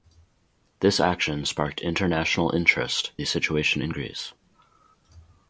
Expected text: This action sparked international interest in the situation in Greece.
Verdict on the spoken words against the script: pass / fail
fail